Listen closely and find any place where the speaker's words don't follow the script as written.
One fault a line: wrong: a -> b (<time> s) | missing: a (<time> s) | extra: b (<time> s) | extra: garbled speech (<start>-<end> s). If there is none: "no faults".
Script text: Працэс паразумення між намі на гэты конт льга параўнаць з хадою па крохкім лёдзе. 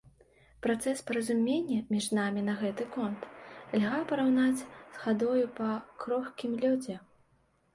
no faults